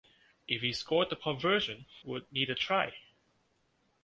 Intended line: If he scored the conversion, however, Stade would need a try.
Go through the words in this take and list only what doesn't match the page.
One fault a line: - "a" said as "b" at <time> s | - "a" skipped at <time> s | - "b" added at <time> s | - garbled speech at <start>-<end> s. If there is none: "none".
- "however Stade" skipped at 1.9 s